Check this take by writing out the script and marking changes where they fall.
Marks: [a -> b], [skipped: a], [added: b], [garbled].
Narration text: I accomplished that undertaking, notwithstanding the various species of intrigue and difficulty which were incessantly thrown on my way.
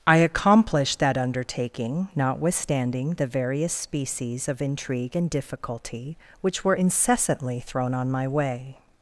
I accomplished that undertaking, notwithstanding the various species of intrigue and difficulty which were incessantly thrown on my way.